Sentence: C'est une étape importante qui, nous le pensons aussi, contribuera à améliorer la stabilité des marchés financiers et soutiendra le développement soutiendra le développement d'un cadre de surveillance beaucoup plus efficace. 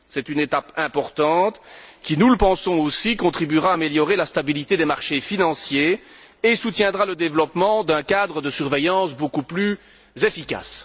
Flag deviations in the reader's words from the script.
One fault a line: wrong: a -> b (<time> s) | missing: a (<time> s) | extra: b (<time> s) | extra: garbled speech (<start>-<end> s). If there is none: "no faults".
missing: soutiendra le développement (7.8 s)